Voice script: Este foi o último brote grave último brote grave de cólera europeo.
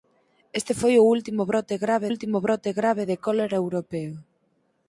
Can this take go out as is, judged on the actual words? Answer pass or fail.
pass